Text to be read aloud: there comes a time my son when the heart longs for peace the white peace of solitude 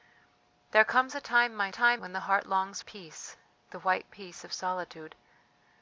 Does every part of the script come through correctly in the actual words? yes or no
no